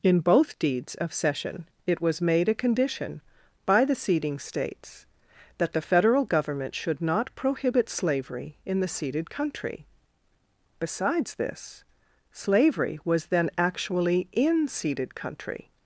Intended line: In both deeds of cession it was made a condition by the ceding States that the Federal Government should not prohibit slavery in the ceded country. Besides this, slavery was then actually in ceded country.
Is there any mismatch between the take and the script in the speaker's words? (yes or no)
no